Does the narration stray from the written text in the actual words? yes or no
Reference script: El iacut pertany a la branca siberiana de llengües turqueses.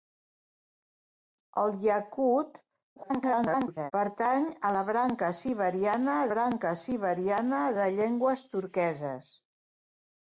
yes